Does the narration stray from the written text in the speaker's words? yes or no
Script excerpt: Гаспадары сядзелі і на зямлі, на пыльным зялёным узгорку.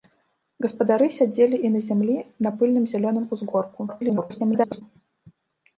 yes